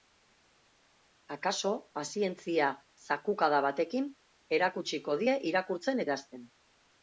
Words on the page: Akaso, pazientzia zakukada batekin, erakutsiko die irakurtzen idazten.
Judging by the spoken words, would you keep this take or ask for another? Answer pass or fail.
pass